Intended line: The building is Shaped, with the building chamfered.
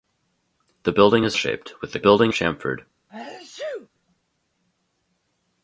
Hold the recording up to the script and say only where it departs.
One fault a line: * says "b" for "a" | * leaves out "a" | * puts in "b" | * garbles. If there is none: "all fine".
all fine